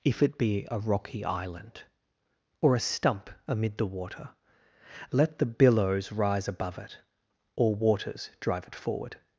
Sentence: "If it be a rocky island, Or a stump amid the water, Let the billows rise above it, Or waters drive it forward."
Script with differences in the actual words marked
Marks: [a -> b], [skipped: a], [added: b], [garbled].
"If it be a rocky island, Or a stump amid the water, Let the billows rise above it, Or waters drive it forward."